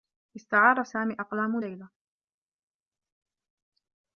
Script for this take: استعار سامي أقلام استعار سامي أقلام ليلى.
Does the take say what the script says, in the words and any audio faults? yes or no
no